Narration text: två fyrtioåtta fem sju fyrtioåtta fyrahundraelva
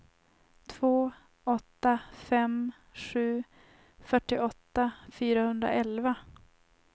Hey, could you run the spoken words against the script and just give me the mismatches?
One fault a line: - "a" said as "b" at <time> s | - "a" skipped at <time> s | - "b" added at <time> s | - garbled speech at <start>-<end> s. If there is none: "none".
- "fyrtioåtta" said as "åtta" at 1.4 s